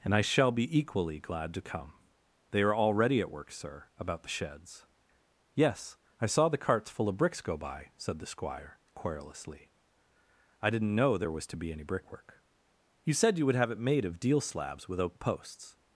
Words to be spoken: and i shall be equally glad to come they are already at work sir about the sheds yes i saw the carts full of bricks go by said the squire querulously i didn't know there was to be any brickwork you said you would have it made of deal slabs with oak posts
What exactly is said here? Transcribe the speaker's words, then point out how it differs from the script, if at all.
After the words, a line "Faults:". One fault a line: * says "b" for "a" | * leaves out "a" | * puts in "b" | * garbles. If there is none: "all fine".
and i shall be equally glad to come they are already at work sir about the sheds yes i saw the carts full of bricks go by said the squire querulously i didn't know there was to be any brickwork you said you would have it made of deal slabs with oak posts
Faults:
all fine